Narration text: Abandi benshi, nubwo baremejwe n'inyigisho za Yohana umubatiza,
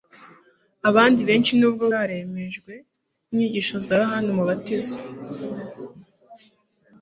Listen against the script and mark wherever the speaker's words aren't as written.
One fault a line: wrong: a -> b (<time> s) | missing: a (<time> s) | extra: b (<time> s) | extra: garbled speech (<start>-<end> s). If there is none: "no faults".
no faults